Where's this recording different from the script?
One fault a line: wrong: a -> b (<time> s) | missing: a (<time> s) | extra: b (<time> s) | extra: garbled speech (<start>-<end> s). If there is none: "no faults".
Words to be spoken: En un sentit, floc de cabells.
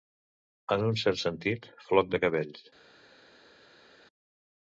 extra: cert (1.0 s)